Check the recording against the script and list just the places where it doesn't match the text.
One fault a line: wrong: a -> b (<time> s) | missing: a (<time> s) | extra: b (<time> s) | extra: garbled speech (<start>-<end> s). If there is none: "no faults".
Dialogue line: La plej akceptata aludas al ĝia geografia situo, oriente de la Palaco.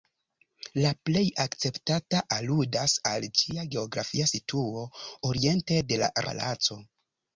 no faults